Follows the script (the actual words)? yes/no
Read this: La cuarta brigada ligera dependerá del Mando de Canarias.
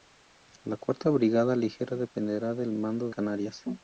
no